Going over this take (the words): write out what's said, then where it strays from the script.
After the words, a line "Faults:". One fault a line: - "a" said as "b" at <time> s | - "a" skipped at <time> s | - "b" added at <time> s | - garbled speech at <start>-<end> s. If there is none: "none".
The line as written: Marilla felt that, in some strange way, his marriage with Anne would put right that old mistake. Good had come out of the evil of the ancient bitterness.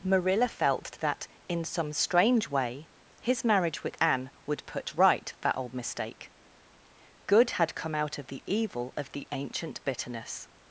Marilla felt that, in some strange way, his marriage with Anne would put right that old mistake. Good had come out of the evil of the ancient bitterness.
Faults:
none